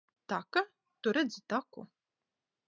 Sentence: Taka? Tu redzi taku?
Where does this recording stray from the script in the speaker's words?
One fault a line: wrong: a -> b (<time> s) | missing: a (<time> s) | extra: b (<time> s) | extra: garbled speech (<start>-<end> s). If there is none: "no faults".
no faults